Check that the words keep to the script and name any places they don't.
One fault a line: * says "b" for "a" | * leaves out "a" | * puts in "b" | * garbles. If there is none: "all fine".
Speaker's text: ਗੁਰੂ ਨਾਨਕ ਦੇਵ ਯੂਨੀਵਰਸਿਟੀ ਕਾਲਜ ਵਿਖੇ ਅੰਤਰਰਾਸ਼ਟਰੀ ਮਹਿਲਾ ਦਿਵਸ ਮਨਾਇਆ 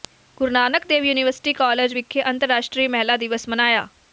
all fine